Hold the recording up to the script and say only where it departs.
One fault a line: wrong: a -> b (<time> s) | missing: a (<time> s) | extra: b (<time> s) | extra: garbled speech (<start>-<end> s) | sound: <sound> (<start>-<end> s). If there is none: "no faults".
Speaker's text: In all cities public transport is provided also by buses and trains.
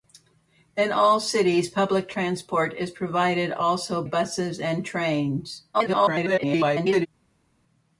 missing: by (4.0 s)
extra: garbled speech (5.7-7.1 s)